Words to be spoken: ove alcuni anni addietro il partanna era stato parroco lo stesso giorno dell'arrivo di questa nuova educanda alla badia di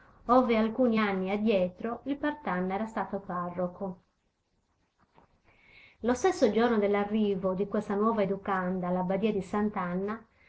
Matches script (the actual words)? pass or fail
pass